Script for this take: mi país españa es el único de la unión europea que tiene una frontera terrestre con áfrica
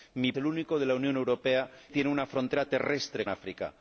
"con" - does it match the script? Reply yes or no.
no